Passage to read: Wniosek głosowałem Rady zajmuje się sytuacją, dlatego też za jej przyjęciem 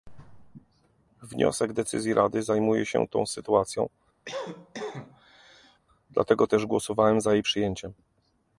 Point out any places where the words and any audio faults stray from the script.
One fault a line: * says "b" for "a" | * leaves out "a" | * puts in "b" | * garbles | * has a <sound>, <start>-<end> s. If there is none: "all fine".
* says "decyzji" for "głosowałem"
* puts in "tą"
* has a cough, 4.3-5.8 s
* puts in "głosowałem"